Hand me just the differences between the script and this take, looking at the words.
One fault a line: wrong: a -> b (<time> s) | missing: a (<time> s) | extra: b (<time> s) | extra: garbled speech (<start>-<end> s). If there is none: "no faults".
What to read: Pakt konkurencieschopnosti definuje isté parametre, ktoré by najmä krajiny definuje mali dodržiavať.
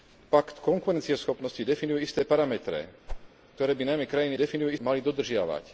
no faults